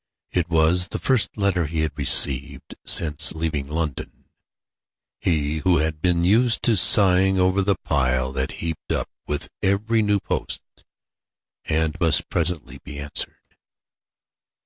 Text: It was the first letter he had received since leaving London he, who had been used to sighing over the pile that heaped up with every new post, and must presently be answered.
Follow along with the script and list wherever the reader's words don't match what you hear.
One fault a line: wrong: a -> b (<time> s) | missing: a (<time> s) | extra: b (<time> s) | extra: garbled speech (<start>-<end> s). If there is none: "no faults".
no faults